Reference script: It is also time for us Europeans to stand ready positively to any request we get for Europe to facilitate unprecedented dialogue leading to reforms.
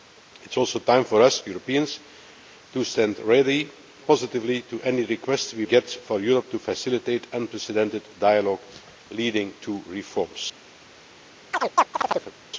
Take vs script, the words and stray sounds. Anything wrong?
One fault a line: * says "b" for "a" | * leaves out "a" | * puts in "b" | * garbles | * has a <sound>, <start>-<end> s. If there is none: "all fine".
* has a chirp, 11.5-12.3 s